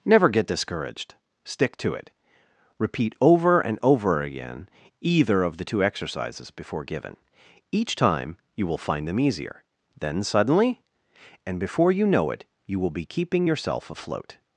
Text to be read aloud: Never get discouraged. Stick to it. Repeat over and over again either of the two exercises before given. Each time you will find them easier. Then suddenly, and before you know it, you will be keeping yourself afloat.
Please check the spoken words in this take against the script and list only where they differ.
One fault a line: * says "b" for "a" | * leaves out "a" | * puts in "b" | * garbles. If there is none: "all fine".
all fine